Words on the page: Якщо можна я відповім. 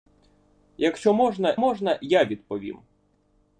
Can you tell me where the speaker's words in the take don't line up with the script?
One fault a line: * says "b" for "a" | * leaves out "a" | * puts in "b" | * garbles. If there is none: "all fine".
* puts in "можна"